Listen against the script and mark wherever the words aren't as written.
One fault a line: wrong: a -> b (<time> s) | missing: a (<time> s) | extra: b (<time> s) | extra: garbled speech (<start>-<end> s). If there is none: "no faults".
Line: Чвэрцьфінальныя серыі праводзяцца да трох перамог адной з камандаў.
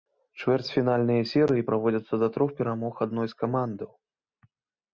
no faults